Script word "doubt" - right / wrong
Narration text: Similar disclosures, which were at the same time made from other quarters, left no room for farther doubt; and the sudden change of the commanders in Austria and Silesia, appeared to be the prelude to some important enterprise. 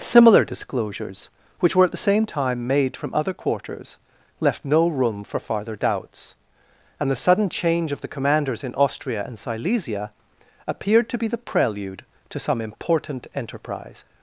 wrong